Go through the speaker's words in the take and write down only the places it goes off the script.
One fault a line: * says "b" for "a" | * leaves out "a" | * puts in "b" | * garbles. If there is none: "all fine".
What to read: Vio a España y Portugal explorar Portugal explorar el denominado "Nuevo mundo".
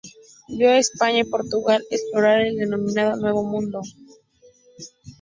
* leaves out "Portugal explorar"